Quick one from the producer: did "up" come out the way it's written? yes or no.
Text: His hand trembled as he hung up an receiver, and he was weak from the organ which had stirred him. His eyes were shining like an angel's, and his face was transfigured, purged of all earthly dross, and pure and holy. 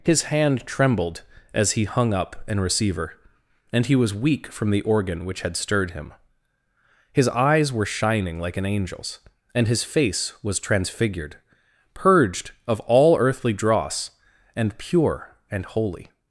yes